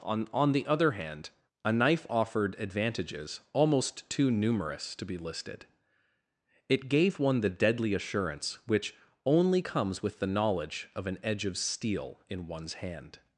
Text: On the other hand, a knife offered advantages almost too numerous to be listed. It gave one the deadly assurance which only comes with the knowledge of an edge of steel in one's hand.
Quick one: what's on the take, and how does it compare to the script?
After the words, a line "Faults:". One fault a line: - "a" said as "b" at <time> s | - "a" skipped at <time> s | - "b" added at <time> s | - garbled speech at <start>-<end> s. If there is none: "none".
On on the other hand, a knife offered advantages almost too numerous to be listed. It gave one the deadly assurance which only comes with the knowledge of an edge of steel in one's hand.
Faults:
- "on" added at 0.3 s